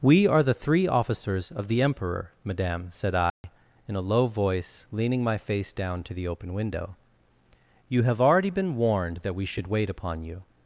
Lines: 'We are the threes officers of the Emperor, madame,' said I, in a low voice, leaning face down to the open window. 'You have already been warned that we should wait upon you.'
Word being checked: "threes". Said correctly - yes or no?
no